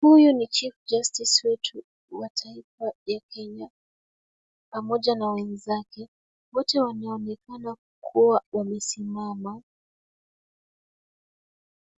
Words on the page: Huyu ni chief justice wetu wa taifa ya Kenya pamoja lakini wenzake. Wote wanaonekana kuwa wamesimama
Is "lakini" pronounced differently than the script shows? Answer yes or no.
yes